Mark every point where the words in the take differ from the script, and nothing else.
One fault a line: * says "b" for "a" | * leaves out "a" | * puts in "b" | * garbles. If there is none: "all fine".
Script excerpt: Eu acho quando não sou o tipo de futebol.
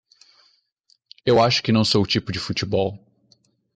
* says "que" for "quando"